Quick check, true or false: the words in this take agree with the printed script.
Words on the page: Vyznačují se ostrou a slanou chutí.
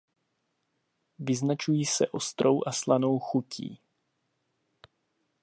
true